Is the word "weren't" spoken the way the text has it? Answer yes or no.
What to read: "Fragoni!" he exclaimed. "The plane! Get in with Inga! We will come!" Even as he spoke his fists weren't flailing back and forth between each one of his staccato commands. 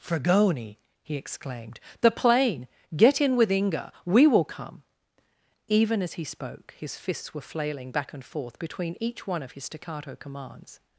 no